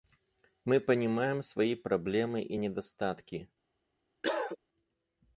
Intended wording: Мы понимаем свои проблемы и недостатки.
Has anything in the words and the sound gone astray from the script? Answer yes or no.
yes